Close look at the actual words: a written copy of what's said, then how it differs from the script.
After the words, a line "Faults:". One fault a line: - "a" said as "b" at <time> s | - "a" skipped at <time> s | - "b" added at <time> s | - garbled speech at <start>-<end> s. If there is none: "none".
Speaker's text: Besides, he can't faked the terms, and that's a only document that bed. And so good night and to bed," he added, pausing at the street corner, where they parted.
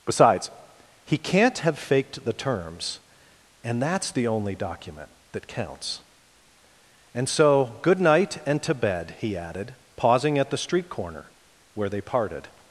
Besides, he can't have faked the terms, and that's the only document that counts. And so good night and to bed," he added, pausing at the street corner, where they parted.
Faults:
- "have" added at 1.6 s
- "a" said as "the" at 4.1 s
- "bed" said as "counts" at 5.5 s